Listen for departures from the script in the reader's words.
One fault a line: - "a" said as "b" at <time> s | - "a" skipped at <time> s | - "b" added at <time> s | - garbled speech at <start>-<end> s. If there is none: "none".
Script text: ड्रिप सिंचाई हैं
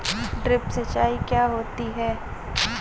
- "क्या होती" added at 1.3 s